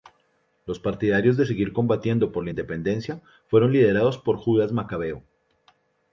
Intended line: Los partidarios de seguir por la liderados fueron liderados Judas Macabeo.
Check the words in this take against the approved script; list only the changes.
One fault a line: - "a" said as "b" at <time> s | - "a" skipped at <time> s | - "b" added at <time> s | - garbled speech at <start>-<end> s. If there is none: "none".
- "combatiendo" added at 1.7 s
- "liderados" said as "independencia" at 2.5 s
- "por" added at 4.2 s